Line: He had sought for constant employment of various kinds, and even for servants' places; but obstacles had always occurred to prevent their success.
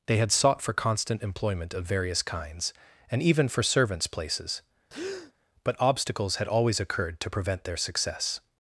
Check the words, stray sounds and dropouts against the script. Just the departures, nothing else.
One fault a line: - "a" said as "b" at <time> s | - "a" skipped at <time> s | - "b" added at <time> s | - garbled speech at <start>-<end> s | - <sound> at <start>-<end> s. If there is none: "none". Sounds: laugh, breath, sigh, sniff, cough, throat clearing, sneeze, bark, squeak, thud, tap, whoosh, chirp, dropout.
- "He" said as "They" at 0.1 s
- breath at 4.9-5.3 s